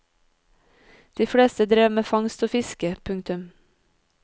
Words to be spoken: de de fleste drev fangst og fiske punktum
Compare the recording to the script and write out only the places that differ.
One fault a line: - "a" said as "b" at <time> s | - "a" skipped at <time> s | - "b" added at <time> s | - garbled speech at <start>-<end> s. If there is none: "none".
- "de" skipped at 1.3 s
- "med" added at 1.9 s